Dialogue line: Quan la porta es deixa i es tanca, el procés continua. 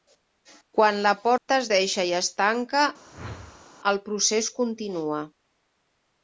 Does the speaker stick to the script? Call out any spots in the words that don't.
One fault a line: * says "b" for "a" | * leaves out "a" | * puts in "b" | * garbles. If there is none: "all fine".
all fine